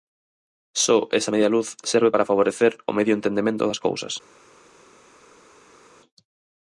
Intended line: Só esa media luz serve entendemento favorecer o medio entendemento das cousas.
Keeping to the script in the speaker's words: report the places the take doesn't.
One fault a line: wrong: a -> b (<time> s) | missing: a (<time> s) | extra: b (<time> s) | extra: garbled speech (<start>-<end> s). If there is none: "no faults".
wrong: entendemento -> para (2.1 s)